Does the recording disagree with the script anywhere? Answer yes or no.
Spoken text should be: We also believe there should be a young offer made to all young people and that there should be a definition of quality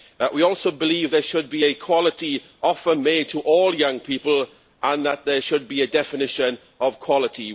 yes